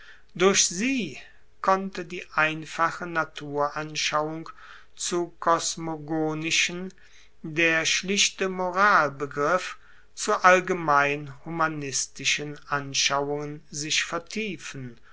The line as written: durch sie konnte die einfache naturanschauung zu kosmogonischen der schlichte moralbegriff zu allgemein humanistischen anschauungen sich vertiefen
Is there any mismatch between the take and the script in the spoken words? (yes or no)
no